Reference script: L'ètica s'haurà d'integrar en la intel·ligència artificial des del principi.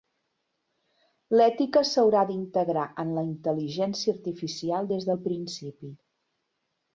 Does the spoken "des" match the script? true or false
true